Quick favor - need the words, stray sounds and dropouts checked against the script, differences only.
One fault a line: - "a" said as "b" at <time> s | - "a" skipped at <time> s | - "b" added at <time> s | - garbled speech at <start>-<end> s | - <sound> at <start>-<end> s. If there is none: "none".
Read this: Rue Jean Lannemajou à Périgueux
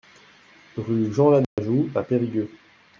- dropout at 1.4-1.6 s